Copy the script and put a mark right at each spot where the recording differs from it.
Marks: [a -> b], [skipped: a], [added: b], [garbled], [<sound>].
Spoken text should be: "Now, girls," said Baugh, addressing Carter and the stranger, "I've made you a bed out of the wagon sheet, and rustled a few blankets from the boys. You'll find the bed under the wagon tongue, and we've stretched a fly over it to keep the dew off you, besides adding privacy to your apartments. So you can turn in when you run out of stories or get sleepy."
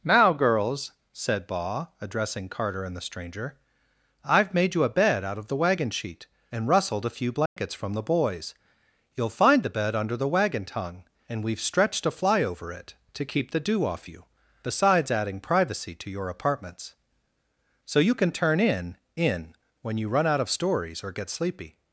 "Now, girls," said Baugh, addressing Carter and the stranger, "I've made you a bed out of the wagon sheet, and rustled a few blankets [dropout] from the boys. You'll find the bed under the wagon tongue, and we've stretched a fly over it to keep the dew off you, besides adding privacy to your apartments. So you can turn in [added: in] when you run out of stories or get sleepy."